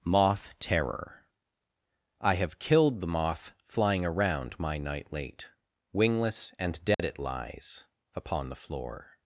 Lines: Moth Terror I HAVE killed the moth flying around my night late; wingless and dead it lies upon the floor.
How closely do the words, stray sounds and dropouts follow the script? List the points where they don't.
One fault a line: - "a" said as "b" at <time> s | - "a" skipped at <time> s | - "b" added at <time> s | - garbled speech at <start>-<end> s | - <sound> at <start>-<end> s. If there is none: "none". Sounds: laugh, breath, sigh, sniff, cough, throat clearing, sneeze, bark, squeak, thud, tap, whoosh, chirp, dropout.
- dropout at 6.9-7.0 s